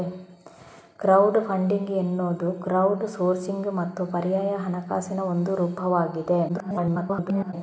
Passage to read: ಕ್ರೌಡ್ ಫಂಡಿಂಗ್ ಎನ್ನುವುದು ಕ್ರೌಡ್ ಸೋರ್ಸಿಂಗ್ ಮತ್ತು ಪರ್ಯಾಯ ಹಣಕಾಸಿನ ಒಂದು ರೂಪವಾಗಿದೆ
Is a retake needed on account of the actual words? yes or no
yes